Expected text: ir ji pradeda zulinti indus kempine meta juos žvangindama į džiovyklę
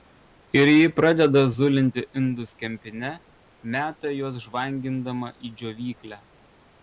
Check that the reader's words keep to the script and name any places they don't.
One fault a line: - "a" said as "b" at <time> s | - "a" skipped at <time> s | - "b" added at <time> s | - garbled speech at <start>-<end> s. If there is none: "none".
none